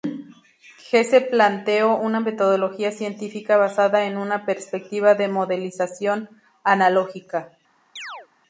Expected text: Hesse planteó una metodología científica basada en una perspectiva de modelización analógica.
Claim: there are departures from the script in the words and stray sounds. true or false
true